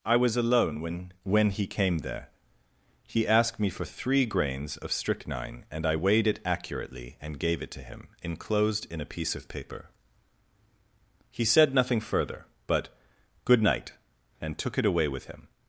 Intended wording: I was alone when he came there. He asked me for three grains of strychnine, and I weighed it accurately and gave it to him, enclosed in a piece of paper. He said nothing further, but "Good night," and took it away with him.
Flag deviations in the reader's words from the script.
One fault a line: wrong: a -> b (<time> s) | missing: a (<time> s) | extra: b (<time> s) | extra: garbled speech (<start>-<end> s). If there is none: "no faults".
extra: when (1.2 s)